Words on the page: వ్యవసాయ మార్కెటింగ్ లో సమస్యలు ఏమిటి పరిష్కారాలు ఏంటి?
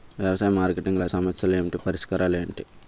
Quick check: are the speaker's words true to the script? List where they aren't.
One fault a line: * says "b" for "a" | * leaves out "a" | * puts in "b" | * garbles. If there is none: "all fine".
all fine